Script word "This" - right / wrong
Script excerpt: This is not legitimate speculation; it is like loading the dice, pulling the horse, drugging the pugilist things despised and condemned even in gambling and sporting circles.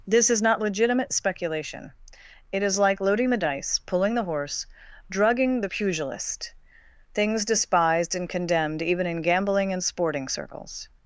right